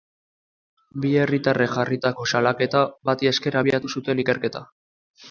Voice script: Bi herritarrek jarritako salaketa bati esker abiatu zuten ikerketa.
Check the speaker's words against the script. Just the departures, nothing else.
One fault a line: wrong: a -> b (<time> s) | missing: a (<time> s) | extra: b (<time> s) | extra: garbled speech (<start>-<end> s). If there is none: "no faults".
no faults